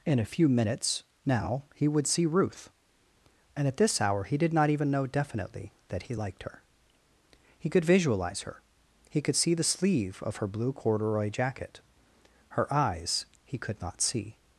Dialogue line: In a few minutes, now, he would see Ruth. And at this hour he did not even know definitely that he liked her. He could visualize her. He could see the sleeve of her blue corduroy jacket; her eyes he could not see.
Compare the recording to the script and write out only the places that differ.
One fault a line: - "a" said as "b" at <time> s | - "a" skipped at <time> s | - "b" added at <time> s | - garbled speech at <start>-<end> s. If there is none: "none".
none